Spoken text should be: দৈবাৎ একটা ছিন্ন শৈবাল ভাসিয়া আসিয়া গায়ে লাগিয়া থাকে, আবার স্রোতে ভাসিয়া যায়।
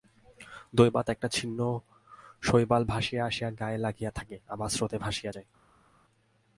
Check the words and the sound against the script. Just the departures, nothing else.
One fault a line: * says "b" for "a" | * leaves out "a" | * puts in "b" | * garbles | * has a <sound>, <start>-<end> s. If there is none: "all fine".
all fine